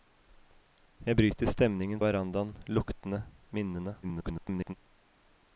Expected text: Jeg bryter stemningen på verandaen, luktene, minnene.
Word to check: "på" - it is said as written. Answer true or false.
false